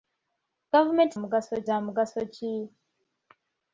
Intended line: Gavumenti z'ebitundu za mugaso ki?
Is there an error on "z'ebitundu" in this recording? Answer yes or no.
yes